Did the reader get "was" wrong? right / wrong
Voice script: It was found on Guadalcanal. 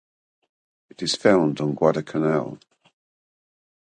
wrong